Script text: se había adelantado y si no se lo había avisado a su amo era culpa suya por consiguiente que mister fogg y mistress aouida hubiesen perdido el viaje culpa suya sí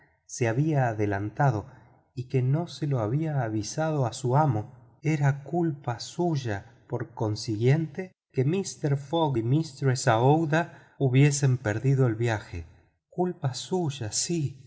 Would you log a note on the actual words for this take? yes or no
yes